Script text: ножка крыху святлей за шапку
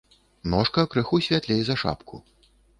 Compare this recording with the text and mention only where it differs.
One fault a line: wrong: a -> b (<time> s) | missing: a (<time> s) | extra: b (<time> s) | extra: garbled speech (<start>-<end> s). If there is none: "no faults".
no faults